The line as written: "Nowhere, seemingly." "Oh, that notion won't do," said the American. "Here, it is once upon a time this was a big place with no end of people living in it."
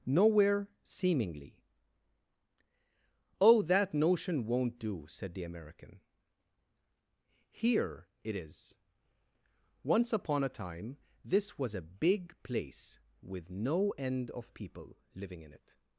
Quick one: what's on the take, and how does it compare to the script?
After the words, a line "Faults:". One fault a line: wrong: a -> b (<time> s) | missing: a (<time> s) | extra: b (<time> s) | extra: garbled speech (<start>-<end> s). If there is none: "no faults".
"Nowhere, seemingly." "Oh, that notion won't do," said the American. "Here, it is once upon a time this was a big place with no end of people living in it."
Faults:
no faults